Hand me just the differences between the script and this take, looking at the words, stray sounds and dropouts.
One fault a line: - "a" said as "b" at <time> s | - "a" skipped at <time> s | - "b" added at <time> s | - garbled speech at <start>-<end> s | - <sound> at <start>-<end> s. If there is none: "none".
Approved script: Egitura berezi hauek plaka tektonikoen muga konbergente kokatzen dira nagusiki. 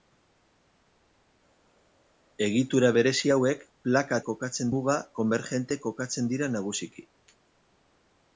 - "tektonikoen" said as "kokatzen" at 4.3 s